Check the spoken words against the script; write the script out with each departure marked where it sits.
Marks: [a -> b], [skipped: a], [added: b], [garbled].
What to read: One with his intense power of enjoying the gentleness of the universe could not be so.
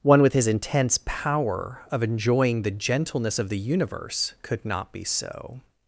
One with his intense power of enjoying the gentleness of the universe could not be so.